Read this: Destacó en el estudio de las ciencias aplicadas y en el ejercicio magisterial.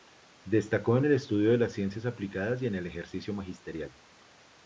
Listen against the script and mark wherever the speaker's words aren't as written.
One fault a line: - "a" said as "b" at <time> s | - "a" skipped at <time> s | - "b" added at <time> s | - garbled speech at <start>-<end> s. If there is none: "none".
none